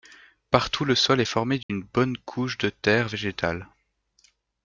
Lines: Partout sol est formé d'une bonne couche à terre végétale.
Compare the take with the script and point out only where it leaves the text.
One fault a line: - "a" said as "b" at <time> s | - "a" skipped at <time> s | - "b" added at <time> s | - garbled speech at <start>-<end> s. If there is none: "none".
- "le" added at 0.8 s
- "à" said as "de" at 2.6 s